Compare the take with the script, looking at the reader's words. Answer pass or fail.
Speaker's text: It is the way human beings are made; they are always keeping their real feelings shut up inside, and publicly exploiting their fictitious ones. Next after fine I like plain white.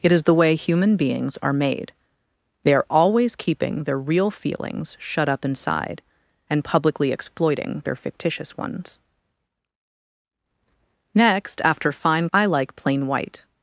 pass